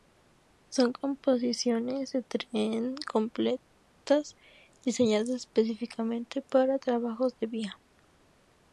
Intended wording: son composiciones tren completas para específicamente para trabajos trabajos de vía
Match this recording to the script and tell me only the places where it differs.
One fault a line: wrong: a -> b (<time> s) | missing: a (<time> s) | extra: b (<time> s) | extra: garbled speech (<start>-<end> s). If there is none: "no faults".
extra: de (2.1 s)
wrong: para -> diseñadas (4.8 s)
missing: trabajos (7.4 s)